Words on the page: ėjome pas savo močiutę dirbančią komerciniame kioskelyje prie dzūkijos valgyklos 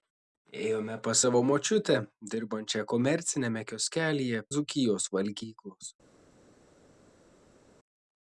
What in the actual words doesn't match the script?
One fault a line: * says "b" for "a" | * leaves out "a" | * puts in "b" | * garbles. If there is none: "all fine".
* leaves out "prie"